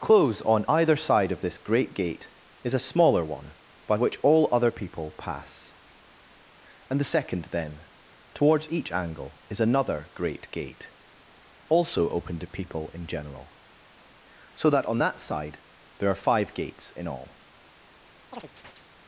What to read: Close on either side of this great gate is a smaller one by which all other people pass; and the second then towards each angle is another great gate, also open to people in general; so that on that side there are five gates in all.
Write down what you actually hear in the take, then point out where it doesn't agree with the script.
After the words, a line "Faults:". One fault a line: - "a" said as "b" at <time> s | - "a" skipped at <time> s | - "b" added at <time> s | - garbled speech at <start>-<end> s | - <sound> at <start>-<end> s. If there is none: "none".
Close on either side of this great gate is a smaller one by which all other people pass; and the second then towards each angle is another great gate, also open to people in general; so that on that side there are five gates in all.
Faults:
- chirp at 18.3-18.9 s